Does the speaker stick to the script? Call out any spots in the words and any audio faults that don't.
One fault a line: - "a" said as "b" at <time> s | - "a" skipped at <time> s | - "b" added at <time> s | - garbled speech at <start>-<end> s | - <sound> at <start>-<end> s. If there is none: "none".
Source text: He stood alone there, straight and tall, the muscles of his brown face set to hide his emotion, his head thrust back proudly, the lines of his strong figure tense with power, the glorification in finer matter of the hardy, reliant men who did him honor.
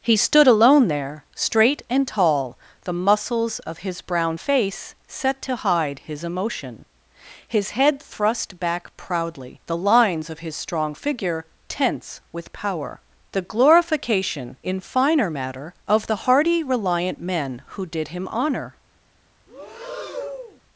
- breath at 19.5-20.6 s